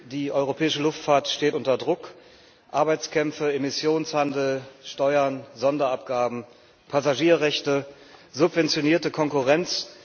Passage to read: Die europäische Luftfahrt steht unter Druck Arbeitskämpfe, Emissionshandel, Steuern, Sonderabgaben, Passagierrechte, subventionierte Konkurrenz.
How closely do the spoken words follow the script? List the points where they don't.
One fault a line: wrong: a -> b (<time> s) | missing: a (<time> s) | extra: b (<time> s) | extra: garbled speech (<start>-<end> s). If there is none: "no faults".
no faults